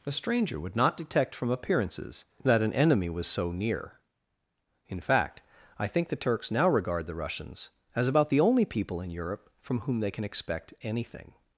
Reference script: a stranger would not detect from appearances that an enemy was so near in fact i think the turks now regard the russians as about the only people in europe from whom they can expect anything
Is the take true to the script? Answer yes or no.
yes